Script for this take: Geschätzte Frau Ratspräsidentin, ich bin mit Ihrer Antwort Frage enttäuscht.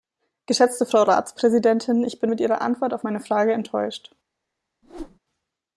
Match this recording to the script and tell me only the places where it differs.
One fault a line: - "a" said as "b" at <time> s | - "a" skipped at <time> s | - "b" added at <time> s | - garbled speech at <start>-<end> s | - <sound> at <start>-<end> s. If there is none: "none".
- "auf meine" added at 2.9 s
- whoosh at 4.8-5.2 s